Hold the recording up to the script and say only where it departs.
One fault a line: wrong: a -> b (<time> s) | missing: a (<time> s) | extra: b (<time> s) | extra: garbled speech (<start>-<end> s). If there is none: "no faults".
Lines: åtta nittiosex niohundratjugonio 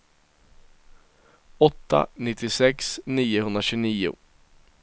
no faults